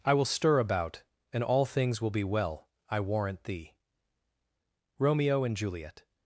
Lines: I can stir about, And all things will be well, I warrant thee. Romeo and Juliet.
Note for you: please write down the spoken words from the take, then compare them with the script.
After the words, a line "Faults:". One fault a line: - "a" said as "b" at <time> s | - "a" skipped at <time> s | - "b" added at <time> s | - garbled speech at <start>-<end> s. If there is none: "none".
I will stir about, And all things will be well, I warrant thee. Romeo and Juliet.
Faults:
- "can" said as "will" at 0.1 s